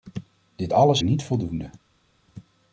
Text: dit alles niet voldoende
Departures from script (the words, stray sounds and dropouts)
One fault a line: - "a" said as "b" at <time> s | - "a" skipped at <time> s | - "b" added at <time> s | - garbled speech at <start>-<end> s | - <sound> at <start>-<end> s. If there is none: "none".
none